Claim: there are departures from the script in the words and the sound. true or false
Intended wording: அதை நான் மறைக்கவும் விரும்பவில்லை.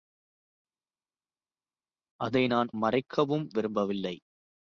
false